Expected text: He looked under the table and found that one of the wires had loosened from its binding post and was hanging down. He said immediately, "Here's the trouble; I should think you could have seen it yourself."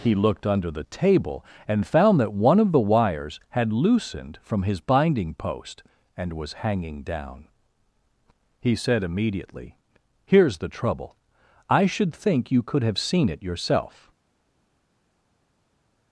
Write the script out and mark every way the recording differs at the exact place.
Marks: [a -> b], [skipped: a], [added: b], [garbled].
He looked under the table and found that one of the wires had loosened from [its -> his] binding post and was hanging down. He said immediately, "Here's the trouble; I should think you could have seen it yourself."